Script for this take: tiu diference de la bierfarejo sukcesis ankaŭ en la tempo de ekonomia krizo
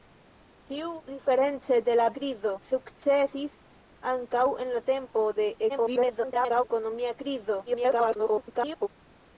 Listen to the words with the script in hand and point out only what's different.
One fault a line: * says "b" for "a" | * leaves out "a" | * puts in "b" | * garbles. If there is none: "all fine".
* says "krizo" for "bierfarejo"
* garbles
* garbles